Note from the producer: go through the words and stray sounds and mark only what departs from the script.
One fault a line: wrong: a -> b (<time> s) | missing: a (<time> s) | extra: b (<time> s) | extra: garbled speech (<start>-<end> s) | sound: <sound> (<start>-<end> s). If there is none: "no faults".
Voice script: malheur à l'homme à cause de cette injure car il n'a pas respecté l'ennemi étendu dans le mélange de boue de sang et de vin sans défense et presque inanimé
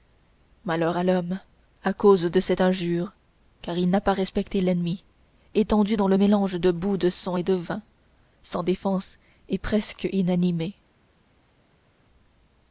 no faults